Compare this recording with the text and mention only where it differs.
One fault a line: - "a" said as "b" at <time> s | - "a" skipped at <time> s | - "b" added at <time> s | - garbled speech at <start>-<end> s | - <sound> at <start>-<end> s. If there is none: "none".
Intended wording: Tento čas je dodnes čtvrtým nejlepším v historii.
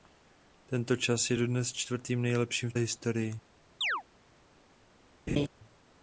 - chirp at 3.8-4.0 s
- laugh at 5.3-5.5 s